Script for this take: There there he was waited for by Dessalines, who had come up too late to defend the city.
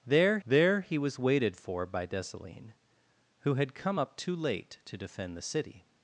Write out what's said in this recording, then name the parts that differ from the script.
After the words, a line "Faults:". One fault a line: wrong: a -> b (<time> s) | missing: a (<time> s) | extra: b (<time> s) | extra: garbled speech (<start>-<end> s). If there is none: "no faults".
There there he was waited for by Dessalines, who had come up too late to defend the city.
Faults:
no faults